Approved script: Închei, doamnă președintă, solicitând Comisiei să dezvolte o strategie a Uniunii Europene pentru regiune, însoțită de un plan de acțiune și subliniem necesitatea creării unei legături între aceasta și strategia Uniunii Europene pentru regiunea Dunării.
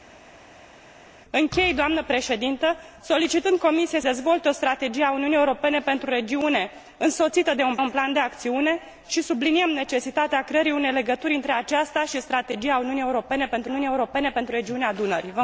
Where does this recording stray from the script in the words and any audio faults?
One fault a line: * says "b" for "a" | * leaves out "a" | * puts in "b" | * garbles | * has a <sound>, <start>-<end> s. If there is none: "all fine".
* leaves out "să"
* puts in "un"
* puts in "Uniunii Europene pentru"